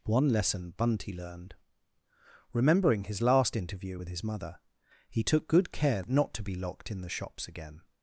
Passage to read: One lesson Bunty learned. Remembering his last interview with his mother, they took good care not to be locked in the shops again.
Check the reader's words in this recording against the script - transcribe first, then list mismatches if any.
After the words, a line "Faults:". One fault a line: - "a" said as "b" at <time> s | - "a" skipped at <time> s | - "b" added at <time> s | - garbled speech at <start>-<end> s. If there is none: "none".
One lesson Bunty learned. Remembering his last interview with his mother, he took good care not to be locked in the shops again.
Faults:
- "they" said as "he" at 5.1 s